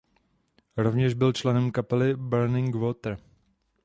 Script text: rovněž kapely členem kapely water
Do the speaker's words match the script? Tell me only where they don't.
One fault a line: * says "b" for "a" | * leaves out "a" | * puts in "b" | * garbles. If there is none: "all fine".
* says "byl" for "kapely"
* puts in "burning"